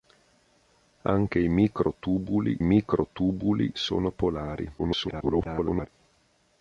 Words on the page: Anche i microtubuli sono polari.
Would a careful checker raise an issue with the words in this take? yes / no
yes